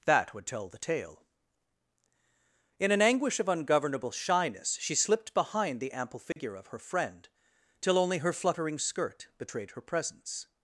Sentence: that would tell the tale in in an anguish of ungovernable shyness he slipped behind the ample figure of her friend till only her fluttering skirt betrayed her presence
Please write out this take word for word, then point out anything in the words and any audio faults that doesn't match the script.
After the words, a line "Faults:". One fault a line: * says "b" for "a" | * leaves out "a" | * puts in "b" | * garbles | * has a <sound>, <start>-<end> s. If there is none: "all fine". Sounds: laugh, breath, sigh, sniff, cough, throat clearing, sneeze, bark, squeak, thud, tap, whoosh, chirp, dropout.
that would tell the tale in an anguish of ungovernable shyness she slipped behind the ample figure of her friend till only her fluttering skirt betrayed her presence
Faults:
* leaves out "in"
* says "she" for "he"
* has a dropout, 6.3-6.4 s